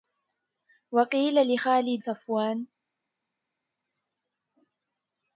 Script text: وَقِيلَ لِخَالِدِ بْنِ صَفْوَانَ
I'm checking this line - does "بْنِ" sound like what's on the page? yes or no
no